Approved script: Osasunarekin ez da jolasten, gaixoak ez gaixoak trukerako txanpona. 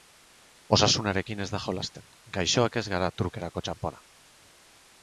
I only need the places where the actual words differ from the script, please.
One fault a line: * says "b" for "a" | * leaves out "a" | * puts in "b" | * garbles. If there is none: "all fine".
* says "gara" for "gaixoak"